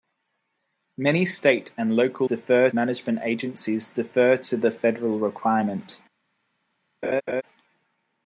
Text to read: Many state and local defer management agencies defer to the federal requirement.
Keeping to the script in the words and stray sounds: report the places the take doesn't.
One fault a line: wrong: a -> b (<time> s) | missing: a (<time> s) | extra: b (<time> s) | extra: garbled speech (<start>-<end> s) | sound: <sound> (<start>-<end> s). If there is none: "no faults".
sound: laugh (7.0-7.4 s)